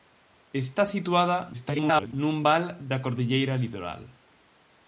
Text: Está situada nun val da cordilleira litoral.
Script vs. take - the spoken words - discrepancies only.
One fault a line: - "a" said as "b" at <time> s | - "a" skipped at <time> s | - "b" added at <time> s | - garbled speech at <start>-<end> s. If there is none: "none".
- garbled speech at 1.5-2.1 s